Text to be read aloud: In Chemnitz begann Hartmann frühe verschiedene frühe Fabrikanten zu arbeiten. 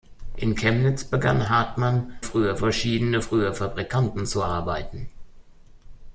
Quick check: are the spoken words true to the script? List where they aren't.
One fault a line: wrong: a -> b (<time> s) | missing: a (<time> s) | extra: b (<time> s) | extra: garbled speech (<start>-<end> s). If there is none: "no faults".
no faults